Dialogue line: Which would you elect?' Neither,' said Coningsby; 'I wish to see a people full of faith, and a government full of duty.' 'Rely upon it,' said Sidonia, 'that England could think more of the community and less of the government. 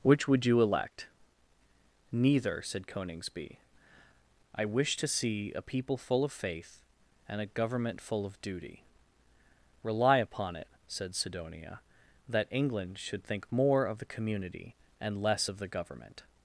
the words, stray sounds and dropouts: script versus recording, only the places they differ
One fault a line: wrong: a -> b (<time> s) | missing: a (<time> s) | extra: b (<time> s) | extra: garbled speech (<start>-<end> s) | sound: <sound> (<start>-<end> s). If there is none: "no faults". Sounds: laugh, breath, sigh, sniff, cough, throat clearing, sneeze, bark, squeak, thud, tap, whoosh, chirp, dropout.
wrong: could -> should (13.0 s)